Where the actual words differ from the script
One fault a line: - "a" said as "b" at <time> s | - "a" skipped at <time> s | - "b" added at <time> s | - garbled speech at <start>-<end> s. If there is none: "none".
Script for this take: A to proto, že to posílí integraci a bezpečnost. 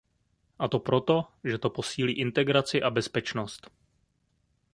none